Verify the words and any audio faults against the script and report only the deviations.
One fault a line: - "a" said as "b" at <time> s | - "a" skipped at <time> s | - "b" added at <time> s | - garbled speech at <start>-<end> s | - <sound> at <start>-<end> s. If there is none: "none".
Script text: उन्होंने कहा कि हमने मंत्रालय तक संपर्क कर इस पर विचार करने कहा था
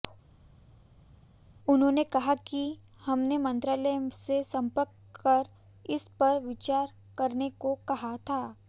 - "तक" said as "से" at 4.1 s
- "को" added at 7.6 s